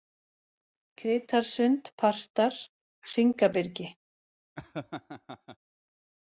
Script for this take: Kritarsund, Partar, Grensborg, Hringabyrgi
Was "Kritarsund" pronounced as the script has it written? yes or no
yes